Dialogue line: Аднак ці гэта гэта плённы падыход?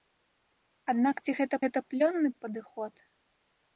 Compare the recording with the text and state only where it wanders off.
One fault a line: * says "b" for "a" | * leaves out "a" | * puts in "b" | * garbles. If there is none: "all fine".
all fine